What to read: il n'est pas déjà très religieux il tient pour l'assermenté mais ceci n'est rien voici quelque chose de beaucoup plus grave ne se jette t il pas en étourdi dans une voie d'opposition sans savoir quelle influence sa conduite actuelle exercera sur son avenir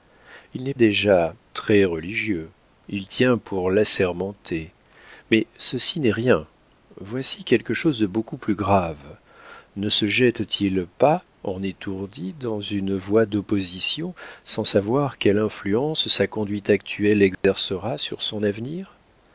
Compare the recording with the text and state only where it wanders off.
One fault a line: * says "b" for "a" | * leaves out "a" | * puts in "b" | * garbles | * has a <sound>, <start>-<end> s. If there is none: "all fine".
* leaves out "pas"
* has a dropout, 17.3-17.4 s